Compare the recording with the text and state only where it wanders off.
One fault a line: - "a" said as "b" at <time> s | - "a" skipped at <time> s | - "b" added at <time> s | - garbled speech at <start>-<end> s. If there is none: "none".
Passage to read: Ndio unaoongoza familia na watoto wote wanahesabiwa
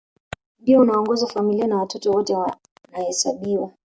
none